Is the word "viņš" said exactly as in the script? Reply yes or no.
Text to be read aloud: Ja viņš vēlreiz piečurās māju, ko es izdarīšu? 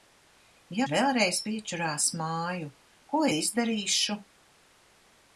no